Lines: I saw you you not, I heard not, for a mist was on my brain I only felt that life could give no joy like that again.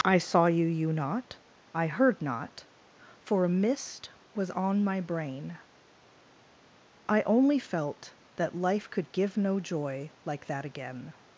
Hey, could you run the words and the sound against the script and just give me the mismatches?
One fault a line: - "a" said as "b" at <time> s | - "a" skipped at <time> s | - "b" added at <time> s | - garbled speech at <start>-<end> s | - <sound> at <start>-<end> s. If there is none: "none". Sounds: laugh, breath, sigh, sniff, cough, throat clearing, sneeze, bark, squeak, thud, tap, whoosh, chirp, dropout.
none